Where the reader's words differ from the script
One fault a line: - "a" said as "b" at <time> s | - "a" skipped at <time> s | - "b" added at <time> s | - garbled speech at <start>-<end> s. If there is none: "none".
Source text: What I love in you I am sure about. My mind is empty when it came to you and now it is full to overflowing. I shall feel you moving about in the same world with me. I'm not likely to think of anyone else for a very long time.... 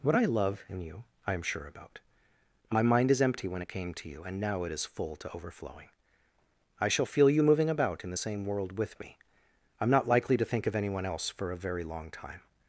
none